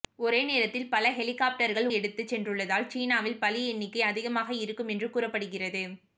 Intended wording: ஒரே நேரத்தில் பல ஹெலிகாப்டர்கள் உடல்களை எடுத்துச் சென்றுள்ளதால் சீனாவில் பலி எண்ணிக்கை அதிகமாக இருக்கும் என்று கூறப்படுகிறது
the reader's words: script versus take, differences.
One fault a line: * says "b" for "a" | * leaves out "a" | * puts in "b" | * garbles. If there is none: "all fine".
* leaves out "உடல்களை"